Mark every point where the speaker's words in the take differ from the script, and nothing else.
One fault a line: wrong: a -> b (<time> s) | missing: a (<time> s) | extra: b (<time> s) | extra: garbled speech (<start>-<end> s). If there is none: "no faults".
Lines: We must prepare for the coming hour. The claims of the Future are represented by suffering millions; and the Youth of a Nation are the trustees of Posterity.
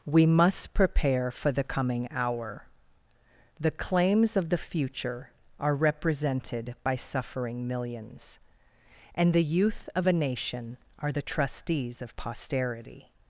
no faults